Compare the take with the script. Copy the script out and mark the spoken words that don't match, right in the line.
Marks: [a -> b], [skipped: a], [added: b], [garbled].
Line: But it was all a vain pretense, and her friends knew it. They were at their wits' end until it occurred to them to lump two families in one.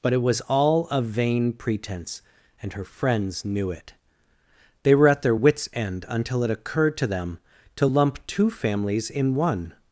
But it was all a vain pretense, and her friends knew it. They were at their wits' end until it occurred to them to lump two families in one.